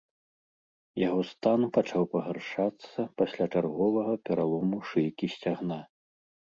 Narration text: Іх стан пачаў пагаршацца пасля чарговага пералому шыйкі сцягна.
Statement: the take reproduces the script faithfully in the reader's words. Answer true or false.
false